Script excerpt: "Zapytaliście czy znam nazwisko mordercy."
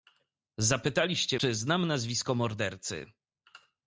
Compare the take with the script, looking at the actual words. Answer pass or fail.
pass